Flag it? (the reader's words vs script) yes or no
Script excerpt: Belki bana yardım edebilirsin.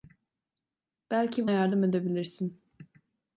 yes